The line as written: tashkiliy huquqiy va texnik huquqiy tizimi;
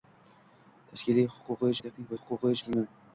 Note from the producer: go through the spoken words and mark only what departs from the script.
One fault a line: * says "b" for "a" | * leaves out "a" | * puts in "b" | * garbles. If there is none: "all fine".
all fine